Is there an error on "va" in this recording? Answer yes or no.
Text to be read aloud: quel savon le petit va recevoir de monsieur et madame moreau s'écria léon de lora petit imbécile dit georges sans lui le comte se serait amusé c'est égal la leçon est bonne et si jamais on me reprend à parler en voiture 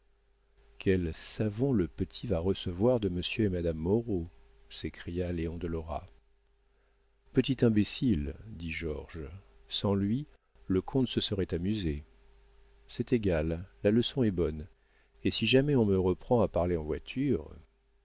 no